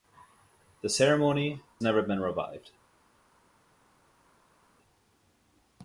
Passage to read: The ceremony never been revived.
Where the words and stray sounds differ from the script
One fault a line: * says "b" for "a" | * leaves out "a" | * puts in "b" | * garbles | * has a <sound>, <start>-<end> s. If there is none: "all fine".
all fine